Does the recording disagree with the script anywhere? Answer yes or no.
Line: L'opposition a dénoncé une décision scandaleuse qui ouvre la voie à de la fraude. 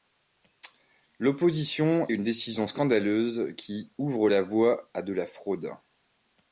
yes